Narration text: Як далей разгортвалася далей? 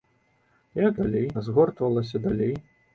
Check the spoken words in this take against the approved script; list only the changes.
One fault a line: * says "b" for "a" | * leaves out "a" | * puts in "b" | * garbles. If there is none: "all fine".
all fine